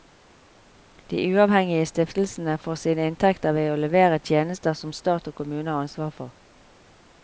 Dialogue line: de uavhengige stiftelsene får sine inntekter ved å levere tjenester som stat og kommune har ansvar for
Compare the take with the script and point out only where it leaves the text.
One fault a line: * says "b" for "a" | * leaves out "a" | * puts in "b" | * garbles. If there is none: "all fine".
all fine